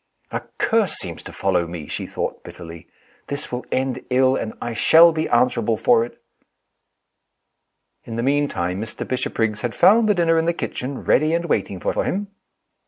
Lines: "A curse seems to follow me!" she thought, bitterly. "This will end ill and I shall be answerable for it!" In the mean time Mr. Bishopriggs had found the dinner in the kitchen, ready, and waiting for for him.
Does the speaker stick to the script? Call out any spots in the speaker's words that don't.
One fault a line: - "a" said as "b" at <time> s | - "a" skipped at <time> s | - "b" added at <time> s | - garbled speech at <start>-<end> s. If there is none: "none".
none